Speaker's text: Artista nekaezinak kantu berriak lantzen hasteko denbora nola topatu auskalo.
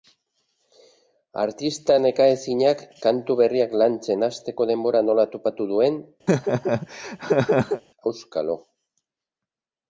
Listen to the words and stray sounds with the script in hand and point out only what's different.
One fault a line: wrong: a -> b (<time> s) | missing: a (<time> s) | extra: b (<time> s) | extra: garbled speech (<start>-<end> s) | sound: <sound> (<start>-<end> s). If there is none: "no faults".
extra: duen (5.7 s)
sound: laugh (6.3-7.8 s)